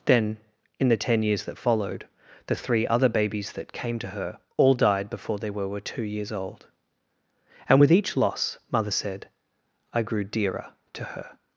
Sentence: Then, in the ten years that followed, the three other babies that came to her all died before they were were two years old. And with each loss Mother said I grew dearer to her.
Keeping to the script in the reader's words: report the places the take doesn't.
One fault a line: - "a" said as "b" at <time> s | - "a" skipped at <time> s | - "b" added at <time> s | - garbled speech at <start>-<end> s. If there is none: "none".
none